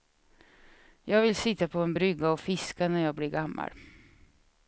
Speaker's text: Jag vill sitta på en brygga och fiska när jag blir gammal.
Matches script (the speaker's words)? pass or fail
pass